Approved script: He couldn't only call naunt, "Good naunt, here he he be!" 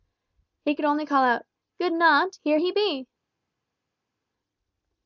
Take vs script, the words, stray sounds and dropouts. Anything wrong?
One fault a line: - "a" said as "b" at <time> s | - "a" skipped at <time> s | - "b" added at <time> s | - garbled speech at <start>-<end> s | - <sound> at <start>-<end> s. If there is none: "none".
- "couldn't" said as "could" at 0.7 s
- "naunt" said as "out" at 1.2 s
- "he" skipped at 2.7 s